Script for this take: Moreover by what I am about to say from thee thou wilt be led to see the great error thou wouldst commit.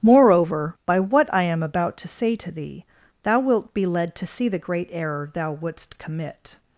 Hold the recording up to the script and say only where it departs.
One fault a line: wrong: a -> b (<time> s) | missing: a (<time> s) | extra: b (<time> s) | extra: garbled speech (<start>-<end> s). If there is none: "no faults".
wrong: from -> to (2.3 s)